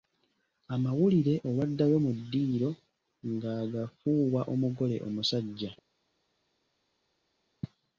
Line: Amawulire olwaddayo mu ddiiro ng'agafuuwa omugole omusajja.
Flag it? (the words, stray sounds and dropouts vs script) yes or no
no